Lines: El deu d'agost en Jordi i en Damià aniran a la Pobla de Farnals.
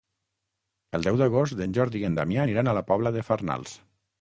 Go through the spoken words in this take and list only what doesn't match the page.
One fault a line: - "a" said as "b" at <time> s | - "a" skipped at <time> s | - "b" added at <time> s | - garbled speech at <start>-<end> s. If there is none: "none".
none